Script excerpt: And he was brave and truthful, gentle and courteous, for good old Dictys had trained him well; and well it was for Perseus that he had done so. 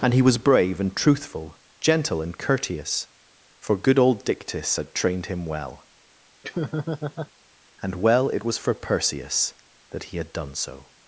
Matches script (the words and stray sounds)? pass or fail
fail